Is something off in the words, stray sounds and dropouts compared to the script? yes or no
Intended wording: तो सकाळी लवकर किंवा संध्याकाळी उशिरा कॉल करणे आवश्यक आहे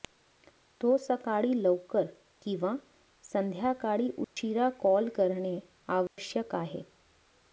yes